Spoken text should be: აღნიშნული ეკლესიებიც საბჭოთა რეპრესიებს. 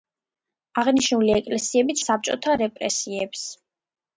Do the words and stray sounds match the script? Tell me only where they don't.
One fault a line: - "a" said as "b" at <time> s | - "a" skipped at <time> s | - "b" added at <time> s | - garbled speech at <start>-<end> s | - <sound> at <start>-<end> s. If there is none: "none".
none